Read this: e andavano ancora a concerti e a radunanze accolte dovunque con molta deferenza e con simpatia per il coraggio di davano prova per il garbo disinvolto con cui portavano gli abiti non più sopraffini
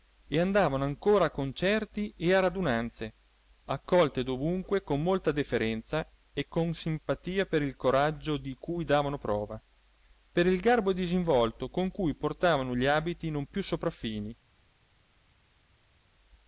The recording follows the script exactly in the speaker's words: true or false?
false